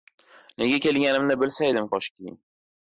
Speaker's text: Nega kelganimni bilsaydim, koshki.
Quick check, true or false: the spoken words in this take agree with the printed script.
true